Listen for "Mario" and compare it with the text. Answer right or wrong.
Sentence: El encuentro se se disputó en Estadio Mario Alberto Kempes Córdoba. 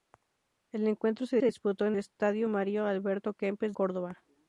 right